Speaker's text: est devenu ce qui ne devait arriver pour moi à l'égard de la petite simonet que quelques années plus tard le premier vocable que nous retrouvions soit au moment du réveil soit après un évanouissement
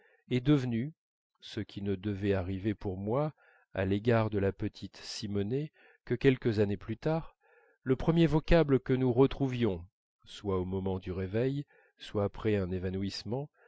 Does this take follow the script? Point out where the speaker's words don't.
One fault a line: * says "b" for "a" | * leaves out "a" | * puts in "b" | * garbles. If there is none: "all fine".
all fine